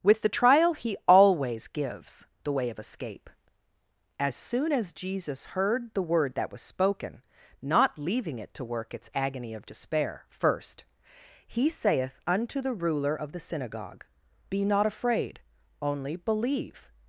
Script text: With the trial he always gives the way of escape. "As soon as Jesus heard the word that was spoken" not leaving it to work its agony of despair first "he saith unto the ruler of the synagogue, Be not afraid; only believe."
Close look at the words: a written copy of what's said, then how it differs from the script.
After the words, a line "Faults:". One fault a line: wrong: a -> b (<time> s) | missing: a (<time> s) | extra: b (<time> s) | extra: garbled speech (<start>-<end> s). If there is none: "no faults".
With the trial he always gives the way of escape. "As soon as Jesus heard the word that was spoken" not leaving it to work its agony of despair first "he saith unto the ruler of the synagogue, Be not afraid; only believe."
Faults:
no faults